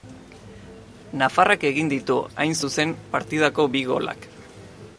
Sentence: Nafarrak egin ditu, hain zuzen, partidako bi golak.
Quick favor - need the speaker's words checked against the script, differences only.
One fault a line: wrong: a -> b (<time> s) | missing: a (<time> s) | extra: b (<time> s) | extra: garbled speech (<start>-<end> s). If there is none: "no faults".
no faults